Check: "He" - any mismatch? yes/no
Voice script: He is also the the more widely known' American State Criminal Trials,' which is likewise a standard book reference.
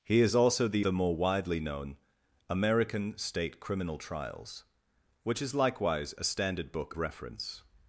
no